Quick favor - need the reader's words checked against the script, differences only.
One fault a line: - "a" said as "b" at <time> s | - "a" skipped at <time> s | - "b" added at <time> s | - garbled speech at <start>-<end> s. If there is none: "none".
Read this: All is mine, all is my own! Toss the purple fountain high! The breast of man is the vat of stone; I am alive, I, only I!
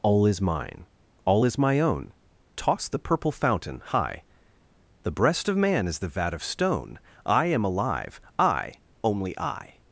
none